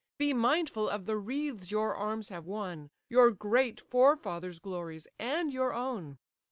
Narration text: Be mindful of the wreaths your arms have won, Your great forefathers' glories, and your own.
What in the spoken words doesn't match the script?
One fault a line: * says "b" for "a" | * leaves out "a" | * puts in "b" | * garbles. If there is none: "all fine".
all fine